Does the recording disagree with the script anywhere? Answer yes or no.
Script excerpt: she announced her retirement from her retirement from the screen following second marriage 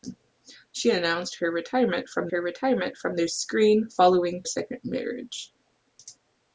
no